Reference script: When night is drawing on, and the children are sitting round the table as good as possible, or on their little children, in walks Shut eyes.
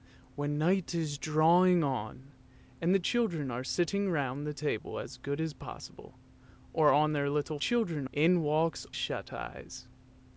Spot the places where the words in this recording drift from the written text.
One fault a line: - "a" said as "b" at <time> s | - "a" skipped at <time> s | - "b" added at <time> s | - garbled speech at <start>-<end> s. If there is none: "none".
none